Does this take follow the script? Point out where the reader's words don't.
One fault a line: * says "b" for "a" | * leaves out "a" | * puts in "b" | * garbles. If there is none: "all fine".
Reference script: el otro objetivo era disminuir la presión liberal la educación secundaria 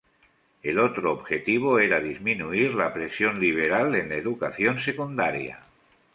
* puts in "en"